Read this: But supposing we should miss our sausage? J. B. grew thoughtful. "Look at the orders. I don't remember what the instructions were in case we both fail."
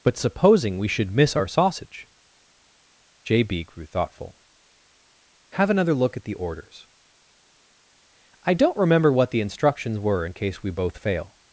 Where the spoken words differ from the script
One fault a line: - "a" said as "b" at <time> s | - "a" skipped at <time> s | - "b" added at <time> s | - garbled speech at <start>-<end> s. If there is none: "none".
- "Have another" added at 5.5 s